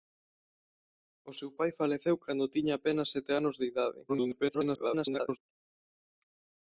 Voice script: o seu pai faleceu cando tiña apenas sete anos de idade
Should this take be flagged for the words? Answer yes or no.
yes